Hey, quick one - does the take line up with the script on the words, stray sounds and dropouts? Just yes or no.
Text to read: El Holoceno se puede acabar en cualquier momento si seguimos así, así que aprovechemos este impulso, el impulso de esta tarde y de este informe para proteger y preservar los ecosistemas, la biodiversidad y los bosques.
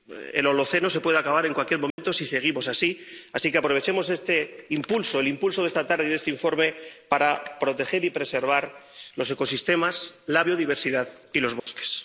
no